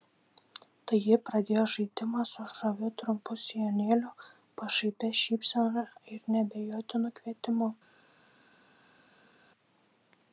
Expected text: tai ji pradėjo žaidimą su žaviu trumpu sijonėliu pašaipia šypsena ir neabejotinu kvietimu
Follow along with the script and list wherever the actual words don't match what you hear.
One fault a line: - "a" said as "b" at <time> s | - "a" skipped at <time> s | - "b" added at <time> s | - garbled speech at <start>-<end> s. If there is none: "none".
none